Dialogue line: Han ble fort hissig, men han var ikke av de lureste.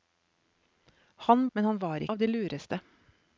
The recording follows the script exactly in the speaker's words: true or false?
false